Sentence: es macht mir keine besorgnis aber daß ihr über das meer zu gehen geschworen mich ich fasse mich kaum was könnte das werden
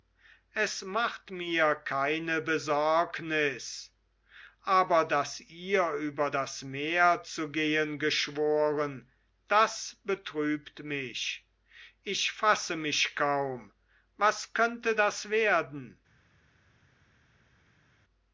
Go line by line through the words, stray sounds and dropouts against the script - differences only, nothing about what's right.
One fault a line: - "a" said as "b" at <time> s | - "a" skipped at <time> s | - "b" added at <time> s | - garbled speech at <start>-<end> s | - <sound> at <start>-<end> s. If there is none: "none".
- "das betrübt" added at 9.5 s